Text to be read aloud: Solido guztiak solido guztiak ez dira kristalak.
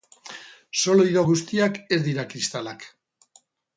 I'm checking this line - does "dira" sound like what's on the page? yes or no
yes